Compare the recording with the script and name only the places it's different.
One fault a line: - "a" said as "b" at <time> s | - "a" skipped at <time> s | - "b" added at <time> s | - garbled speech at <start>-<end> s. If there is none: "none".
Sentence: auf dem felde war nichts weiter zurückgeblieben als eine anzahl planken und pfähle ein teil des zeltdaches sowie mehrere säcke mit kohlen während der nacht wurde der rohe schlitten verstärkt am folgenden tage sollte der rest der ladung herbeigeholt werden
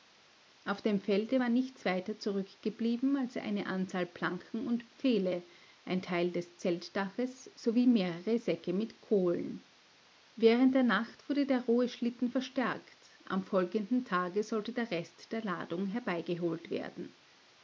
none